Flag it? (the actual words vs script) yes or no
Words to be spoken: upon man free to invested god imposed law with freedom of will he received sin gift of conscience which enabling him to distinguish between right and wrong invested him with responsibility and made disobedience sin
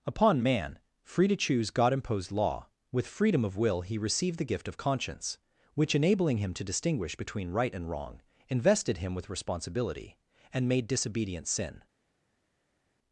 yes